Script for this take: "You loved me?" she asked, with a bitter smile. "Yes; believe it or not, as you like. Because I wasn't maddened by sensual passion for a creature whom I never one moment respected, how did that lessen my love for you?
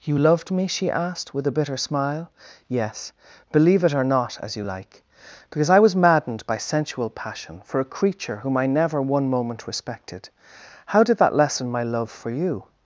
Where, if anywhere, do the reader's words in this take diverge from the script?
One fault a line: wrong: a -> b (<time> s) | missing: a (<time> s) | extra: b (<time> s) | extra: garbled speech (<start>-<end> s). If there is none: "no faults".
wrong: wasn't -> was (5.8 s)